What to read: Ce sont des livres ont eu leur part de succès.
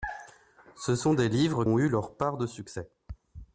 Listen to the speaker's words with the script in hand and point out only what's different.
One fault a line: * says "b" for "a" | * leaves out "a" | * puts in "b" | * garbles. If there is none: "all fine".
all fine